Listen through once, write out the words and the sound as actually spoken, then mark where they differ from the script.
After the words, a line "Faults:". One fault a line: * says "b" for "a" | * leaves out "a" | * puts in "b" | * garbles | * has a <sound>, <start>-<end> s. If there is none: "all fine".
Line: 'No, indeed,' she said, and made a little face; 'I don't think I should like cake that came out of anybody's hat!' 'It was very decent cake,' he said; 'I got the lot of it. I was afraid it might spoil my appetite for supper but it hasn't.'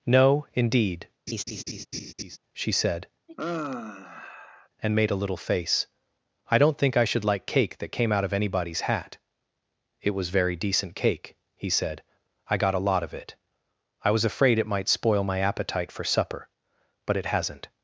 'No, indeed,' she said, and made a little face; 'I don't think I should like cake that came out of anybody's hat!' 'It was very decent cake,' he said; 'I got a lot of it. I was afraid it might spoil my appetite for supper but it hasn't.'
Faults:
* has a laugh, 1.3-2.4 s
* has a sigh, 3.3-4.7 s
* says "a" for "the"